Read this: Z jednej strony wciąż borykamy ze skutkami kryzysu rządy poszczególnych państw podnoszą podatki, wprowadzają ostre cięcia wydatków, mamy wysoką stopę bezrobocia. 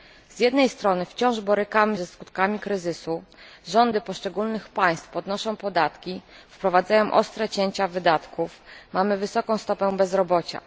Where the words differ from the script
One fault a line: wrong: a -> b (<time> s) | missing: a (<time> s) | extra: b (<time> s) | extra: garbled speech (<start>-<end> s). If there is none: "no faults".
no faults